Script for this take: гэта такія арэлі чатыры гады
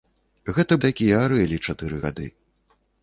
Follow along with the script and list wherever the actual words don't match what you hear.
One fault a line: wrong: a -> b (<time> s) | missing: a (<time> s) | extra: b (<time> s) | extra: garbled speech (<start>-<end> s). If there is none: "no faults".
no faults